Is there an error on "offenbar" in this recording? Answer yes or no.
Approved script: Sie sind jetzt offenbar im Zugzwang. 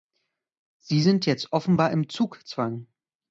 no